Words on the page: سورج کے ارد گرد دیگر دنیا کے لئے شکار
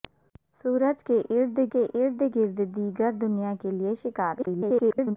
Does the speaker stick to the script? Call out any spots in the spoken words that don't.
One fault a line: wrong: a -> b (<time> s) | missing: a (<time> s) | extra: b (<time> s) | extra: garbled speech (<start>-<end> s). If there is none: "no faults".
extra: کے ارد (1.7 s)
extra: garbled speech (4.4-5.2 s)